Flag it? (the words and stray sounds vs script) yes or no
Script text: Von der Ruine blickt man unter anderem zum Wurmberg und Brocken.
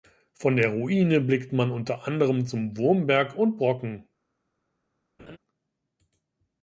yes